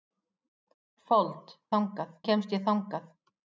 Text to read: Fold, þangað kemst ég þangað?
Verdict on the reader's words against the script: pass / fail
pass